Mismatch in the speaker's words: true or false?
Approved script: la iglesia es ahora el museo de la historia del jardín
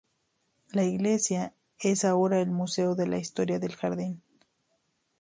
false